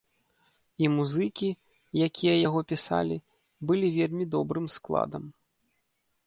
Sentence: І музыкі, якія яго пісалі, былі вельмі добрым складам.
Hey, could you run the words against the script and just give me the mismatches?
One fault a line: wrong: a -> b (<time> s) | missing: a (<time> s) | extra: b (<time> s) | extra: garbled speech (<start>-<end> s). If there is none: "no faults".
no faults